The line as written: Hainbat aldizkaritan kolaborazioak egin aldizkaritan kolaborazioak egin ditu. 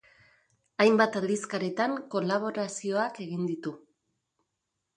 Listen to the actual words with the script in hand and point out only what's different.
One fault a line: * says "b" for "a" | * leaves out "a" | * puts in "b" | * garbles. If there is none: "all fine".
* leaves out "aldizkaritan kolaborazioak egin"